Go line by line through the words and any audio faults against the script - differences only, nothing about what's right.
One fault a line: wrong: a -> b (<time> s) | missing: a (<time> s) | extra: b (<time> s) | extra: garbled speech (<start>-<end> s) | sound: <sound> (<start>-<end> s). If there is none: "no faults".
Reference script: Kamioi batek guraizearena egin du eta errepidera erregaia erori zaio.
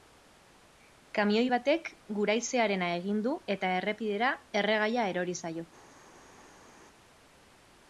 no faults